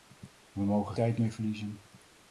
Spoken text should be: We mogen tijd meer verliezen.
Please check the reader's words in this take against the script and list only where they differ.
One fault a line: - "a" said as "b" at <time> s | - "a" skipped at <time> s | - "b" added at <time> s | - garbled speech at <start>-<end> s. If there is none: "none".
none